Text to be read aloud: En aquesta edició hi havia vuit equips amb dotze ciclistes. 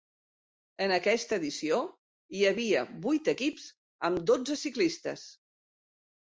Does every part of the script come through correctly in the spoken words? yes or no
yes